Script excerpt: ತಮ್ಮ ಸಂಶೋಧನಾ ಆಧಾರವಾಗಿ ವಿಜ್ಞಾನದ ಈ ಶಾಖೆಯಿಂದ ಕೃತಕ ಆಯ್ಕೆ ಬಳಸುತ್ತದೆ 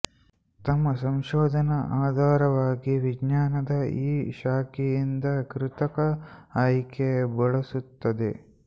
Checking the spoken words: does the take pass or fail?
pass